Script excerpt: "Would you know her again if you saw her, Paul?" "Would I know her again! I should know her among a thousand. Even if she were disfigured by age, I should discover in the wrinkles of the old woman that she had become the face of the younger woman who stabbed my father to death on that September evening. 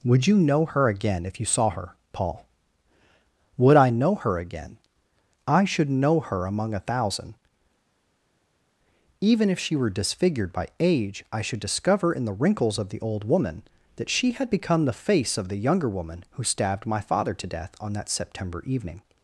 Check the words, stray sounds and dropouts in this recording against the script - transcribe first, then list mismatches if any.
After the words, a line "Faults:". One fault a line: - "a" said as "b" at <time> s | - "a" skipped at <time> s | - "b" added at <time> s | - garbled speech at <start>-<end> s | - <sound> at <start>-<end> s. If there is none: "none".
"Would you know her again if you saw her, Paul?" "Would I know her again! I should know her among a thousand. Even if she were disfigured by age, I should discover in the wrinkles of the old woman that she had become the face of the younger woman who stabbed my father to death on that September evening.
Faults:
none